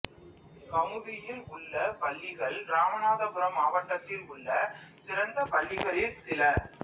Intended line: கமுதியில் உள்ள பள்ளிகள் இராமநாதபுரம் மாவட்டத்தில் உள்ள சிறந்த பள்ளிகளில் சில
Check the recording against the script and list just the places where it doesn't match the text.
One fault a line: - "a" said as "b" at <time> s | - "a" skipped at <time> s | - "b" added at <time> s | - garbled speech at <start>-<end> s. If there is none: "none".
none